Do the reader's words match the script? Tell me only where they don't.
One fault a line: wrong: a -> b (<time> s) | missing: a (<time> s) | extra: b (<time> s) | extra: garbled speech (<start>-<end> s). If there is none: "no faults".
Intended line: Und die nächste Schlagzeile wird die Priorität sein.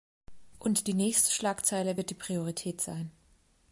no faults